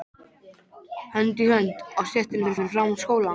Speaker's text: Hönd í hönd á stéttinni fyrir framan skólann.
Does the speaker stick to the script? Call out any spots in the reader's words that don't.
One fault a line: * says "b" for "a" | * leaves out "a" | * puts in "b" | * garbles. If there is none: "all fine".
* puts in "fyrir"